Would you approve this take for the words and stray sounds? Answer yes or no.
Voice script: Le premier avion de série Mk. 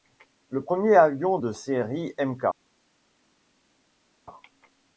yes